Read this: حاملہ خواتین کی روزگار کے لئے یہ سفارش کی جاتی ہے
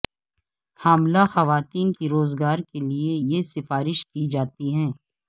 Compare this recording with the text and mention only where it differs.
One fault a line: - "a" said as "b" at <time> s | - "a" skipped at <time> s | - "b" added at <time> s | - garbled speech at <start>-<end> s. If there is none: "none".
none